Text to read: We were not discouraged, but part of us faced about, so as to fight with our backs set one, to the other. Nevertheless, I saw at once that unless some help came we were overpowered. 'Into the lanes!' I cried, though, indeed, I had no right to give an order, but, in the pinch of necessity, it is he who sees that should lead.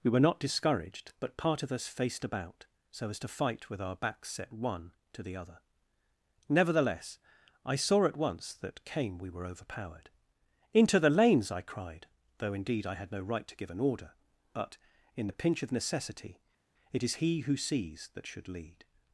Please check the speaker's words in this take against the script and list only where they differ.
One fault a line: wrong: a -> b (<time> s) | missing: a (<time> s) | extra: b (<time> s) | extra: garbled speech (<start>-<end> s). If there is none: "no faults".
missing: unless some help (8.8 s)